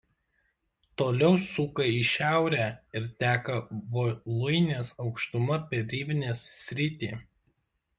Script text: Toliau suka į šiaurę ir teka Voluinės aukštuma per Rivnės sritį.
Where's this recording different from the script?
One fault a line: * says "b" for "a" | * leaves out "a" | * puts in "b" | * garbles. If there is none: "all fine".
all fine